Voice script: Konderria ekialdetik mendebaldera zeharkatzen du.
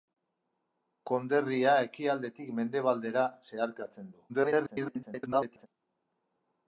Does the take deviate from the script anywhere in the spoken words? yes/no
yes